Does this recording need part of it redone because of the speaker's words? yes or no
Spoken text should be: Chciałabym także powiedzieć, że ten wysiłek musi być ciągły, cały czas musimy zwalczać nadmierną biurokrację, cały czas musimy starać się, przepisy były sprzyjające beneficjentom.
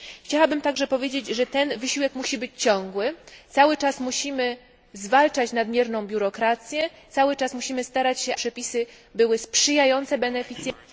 no